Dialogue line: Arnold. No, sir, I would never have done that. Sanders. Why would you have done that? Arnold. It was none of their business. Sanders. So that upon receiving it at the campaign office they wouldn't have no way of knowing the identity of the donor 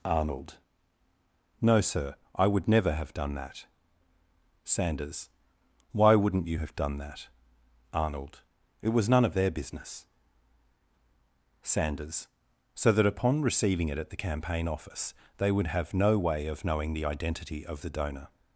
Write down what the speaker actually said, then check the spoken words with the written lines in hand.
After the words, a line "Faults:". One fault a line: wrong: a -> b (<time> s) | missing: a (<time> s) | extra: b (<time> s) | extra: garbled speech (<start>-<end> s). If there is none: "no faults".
Arnold. No, sir, I would never have done that. Sanders. Why wouldn't you have done that? Arnold. It was none of their business. Sanders. So that upon receiving it at the campaign office they would have no way of knowing the identity of the donor
Faults:
wrong: would -> wouldn't (6.2 s)
wrong: wouldn't -> would (15.5 s)